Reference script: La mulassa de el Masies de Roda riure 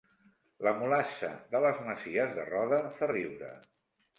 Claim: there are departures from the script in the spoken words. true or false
true